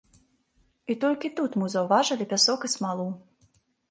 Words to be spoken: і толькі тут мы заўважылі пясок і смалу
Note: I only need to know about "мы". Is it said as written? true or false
true